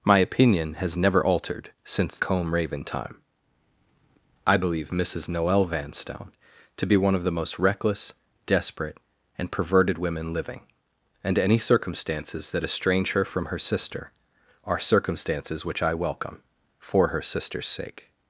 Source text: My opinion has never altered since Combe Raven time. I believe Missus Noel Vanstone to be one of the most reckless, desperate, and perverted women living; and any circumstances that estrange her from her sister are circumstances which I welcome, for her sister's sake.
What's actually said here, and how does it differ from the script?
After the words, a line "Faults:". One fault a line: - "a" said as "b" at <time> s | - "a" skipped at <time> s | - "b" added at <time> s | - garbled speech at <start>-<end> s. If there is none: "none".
My opinion has never altered since Combe Raven time. I believe Missus Noel Vanstone to be one of the most reckless, desperate, and perverted women living; and any circumstances that estrange her from her sister are circumstances which I welcome, for her sister's sake.
Faults:
none